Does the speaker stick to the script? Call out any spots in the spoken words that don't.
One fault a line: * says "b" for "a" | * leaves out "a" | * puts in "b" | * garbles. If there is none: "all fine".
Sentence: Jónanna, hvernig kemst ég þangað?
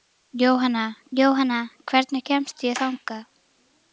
* puts in "jónanna"